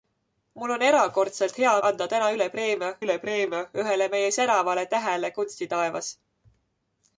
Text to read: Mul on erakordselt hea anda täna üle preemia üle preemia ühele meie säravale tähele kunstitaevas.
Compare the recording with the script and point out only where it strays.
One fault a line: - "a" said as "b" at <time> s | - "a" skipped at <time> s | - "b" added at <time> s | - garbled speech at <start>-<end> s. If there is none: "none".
none